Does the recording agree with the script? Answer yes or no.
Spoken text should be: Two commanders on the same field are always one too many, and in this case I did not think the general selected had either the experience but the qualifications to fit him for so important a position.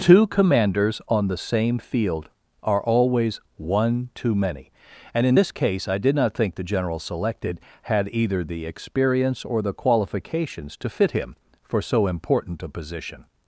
no